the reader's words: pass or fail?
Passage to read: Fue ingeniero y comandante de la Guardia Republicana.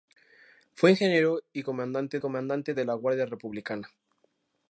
fail